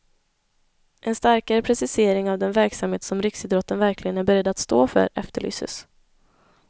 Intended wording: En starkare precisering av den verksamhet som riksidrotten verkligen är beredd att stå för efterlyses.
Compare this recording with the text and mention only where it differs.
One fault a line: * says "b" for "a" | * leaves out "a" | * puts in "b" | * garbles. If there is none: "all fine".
all fine